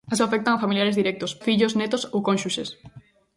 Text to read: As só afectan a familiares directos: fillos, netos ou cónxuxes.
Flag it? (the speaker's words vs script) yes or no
no